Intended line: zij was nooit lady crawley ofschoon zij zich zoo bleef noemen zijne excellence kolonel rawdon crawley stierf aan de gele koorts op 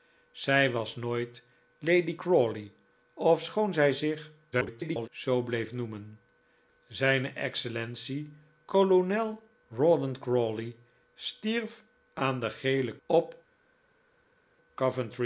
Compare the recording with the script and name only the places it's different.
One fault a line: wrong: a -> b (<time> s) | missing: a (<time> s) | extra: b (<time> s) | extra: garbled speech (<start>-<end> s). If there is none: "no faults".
extra: garbled speech (4.5-5.1 s)
missing: koorts (12.9 s)